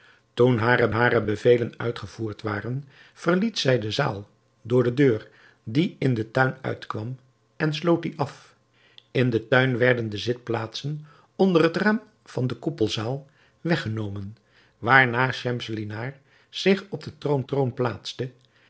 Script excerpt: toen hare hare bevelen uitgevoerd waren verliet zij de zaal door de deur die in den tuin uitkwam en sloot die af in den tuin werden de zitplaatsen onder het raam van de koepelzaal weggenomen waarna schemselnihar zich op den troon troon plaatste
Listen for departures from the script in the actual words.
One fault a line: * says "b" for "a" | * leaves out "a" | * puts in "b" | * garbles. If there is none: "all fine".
all fine